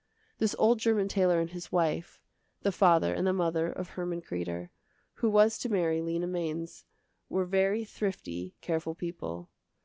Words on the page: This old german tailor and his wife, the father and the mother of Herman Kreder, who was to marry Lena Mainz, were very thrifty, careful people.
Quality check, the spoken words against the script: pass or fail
pass